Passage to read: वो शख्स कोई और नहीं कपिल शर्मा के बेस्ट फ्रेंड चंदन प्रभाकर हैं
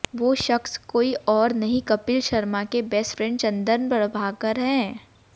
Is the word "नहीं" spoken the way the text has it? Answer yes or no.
yes